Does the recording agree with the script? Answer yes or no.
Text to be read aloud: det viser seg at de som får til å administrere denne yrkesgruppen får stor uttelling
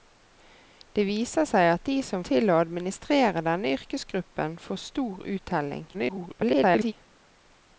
no